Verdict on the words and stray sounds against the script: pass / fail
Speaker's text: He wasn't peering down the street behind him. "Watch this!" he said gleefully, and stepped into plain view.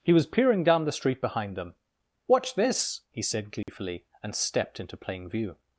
fail